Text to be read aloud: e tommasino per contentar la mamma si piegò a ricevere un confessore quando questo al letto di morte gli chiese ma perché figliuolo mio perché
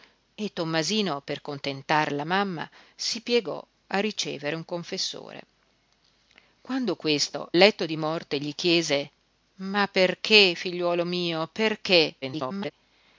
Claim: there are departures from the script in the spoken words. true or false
true